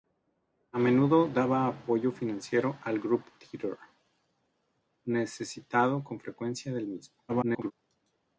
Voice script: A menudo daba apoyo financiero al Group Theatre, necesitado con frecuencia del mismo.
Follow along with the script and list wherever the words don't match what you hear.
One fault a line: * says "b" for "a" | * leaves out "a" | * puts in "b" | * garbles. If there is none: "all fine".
* garbles